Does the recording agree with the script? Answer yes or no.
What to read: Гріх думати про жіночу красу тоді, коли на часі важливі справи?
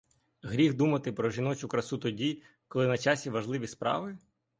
yes